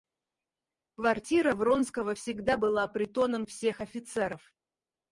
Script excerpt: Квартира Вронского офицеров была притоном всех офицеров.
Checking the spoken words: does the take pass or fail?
fail